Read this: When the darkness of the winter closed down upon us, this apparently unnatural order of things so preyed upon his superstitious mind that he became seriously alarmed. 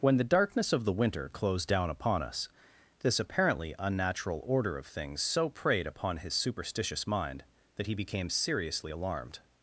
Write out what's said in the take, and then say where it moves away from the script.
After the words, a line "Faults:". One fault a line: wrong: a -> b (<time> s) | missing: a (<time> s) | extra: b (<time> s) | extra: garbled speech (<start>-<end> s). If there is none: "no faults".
When the darkness of the winter closed down upon us, this apparently unnatural order of things so preyed upon his superstitious mind that he became seriously alarmed.
Faults:
no faults